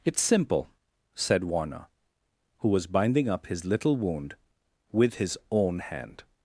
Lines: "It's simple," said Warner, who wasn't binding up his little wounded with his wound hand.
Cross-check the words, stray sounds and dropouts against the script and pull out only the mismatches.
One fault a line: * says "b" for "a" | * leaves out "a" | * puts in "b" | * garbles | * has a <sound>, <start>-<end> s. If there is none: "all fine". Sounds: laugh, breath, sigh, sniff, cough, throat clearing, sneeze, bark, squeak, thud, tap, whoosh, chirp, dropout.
* says "was" for "wasn't"
* says "wound" for "wounded"
* says "own" for "wound"